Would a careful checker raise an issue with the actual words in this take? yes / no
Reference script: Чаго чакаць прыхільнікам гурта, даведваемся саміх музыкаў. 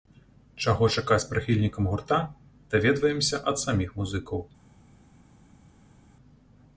yes